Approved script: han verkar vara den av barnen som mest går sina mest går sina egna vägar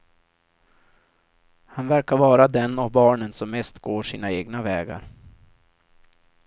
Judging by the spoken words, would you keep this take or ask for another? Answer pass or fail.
fail